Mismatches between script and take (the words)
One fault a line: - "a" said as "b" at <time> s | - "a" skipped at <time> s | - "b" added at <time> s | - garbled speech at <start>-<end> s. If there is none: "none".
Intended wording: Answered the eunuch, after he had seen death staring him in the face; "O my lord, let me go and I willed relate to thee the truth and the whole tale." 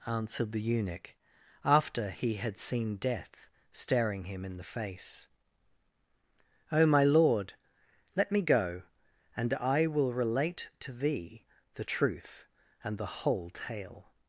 - "willed" said as "will" at 9.9 s